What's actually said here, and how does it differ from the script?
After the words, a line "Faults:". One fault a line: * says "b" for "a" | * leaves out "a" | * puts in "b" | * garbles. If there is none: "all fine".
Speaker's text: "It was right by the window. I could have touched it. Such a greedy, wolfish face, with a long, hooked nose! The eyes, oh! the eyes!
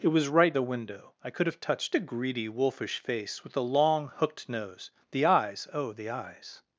"It was right the window. I could have touched a greedy, wolfish face, with a long, hooked nose! The eyes, oh! the eyes!
Faults:
* leaves out "by"
* leaves out "it Such"